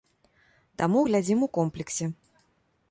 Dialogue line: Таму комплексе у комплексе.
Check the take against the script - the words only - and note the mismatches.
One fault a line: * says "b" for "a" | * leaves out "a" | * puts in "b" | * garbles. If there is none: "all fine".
* says "глядзім" for "комплексе"